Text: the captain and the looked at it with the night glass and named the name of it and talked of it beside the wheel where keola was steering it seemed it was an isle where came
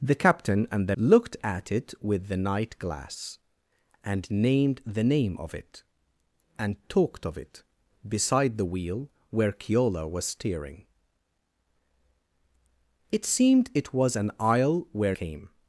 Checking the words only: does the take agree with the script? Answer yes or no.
yes